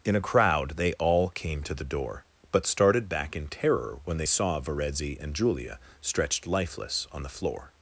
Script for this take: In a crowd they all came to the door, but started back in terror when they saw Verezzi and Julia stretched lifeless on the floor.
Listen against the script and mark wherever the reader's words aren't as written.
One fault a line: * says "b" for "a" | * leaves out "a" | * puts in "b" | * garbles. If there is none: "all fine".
all fine